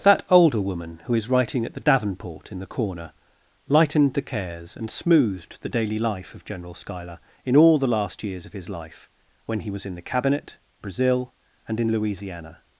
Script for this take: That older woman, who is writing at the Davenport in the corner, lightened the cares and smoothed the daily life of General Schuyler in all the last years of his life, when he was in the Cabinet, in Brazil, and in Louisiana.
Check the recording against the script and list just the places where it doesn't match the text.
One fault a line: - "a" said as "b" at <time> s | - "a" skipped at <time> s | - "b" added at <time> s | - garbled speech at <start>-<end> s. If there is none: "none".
- "in" skipped at 10.6 s